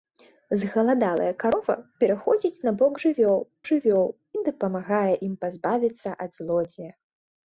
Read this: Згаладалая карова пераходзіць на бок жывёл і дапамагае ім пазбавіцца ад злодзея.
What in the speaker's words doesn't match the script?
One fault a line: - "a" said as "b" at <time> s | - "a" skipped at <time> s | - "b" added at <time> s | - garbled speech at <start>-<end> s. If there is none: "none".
- "жывёл" added at 3.7 s